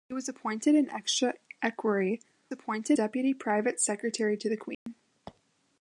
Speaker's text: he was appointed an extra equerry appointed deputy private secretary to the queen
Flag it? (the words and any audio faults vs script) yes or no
yes